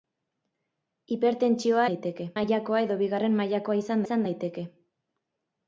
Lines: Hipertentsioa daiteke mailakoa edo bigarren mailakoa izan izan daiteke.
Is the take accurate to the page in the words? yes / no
yes